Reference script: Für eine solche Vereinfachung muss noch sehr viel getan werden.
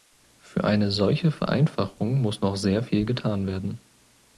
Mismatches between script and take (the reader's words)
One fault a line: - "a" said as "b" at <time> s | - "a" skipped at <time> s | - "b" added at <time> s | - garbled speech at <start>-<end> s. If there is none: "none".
none